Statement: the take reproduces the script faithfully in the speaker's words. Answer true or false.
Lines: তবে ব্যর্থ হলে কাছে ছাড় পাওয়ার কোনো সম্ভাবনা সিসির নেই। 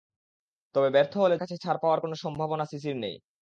true